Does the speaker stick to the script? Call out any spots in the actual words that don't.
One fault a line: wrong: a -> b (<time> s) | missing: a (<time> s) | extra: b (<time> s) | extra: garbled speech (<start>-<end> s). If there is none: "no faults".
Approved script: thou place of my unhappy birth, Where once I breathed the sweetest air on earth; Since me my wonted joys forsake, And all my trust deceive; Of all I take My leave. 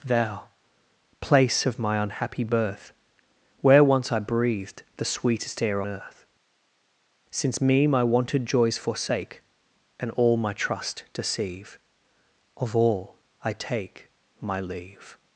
missing: on (5.8 s)